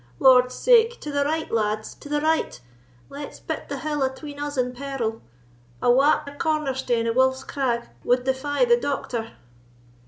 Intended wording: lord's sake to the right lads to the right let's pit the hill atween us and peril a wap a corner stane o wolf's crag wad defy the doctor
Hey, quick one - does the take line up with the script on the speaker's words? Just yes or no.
yes